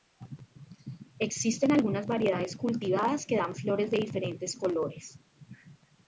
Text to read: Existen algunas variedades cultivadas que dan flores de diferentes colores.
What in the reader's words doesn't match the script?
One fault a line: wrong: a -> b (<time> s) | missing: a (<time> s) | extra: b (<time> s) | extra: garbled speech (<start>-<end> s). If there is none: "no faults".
no faults